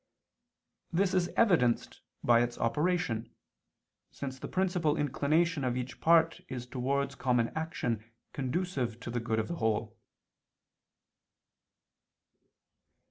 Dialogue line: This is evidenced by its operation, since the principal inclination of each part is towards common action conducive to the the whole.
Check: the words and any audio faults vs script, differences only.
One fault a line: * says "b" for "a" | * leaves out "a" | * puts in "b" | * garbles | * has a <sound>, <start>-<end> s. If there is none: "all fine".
* puts in "good of"